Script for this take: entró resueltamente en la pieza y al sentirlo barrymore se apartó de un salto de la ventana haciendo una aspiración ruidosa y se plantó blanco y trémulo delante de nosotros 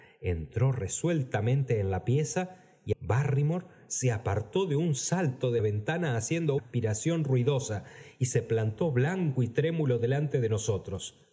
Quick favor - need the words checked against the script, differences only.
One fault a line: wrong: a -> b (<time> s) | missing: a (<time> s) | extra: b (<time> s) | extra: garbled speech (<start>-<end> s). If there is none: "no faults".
missing: al sentirlo (2.9 s)
missing: la (5.6 s)
missing: una (6.6 s)